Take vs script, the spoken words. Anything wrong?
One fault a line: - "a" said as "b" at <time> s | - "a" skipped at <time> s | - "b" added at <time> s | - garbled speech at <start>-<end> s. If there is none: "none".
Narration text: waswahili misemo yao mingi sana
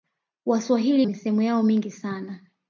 none